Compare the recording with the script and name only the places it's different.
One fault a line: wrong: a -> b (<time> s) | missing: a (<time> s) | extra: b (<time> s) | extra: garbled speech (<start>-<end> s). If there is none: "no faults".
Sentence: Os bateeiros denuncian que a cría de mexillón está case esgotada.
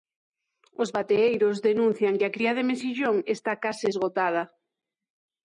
no faults